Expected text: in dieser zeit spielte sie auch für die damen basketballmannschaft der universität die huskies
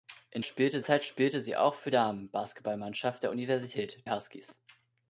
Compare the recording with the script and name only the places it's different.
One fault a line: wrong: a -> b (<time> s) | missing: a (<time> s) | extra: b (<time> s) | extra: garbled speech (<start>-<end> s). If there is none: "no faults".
wrong: dieser -> spielte (0.4 s)
missing: die (1.9 s)
missing: die (4.0 s)